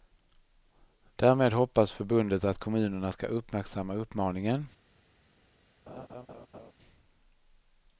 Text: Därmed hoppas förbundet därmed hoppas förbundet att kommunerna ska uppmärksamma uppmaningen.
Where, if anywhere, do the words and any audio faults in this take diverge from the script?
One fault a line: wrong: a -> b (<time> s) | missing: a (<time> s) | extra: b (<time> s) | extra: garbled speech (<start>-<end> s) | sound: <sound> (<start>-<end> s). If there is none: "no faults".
missing: därmed hoppas förbundet (2.4 s)
sound: laugh (5.9-6.7 s)